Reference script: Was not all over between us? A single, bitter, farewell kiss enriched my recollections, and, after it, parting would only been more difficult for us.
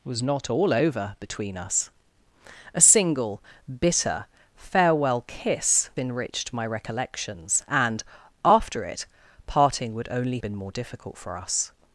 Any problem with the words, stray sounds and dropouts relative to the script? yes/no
no